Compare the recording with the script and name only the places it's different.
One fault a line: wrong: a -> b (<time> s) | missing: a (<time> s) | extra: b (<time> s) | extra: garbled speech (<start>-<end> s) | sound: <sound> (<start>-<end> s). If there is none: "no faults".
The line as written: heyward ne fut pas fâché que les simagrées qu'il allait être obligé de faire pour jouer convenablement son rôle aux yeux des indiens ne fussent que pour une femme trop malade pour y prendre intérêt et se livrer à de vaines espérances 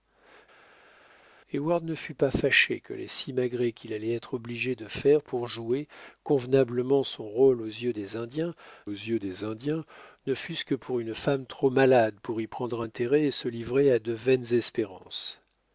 extra: yeux des indiens (8.9 s)